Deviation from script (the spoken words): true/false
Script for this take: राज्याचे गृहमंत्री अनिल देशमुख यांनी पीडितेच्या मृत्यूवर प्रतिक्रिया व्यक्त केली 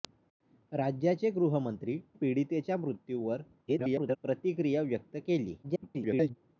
true